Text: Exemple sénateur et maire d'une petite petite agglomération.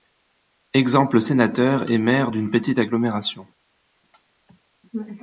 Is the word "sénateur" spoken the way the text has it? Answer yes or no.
yes